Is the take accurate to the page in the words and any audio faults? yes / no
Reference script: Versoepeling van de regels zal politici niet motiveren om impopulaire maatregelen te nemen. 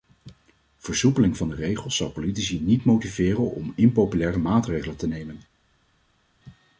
yes